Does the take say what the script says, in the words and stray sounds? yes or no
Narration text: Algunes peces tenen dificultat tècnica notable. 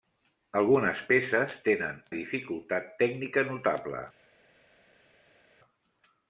yes